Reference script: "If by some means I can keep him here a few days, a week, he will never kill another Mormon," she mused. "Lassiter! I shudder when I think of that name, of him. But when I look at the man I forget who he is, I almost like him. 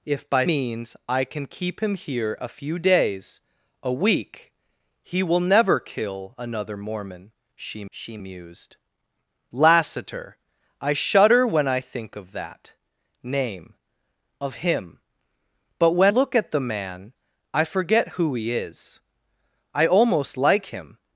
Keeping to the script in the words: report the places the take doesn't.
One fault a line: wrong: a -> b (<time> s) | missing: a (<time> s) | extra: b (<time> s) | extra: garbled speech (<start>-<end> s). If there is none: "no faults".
missing: some (0.5 s)
extra: she (7.9 s)
missing: I (16.1 s)